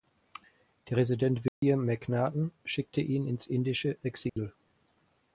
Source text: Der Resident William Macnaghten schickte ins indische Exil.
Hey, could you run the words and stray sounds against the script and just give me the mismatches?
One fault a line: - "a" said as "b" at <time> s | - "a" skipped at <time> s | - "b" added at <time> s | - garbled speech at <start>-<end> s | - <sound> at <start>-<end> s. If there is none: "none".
- dropout at 1.5-1.6 s
- "ihn" added at 3.0 s
- dropout at 4.3-4.4 s